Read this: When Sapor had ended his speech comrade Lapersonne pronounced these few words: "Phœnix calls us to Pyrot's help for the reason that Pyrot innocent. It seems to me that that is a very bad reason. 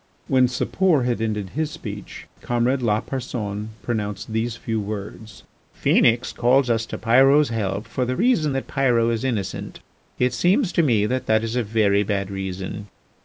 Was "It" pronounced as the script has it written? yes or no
yes